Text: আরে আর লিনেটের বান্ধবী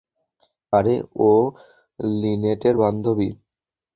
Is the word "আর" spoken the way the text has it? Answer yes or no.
no